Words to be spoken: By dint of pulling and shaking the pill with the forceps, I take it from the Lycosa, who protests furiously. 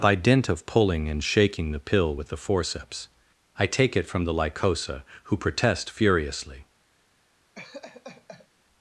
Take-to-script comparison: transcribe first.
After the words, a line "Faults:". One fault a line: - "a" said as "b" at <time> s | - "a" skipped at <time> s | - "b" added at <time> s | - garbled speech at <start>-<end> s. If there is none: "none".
By dint of pulling and shaking the pill with the forceps, I take it from the Lycosa, who protest furiously.
Faults:
- "protests" said as "protest" at 5.4 s